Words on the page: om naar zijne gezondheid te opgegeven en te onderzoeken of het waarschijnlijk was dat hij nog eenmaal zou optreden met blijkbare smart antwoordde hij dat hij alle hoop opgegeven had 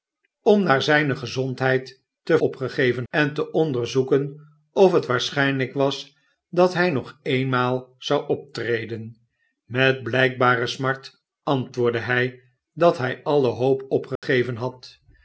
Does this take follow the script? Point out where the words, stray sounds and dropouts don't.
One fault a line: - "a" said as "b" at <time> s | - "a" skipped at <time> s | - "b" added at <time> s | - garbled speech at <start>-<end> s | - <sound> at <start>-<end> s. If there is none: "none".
- dropout at 14.2-14.2 s